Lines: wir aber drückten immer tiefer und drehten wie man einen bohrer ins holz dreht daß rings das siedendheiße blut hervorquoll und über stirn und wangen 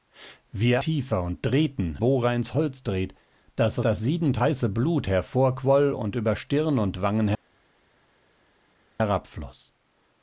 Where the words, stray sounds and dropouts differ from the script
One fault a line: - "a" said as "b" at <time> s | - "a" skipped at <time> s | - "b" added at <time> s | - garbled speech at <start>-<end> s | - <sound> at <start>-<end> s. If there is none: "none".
- "aber drückten immer" skipped at 0.8 s
- "wie man einen" skipped at 2.0 s
- "rings" skipped at 3.8 s